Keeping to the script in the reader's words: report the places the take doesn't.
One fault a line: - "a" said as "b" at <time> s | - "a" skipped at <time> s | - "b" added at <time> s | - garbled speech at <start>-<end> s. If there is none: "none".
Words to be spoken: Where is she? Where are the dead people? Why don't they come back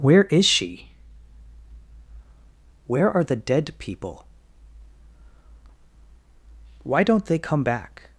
none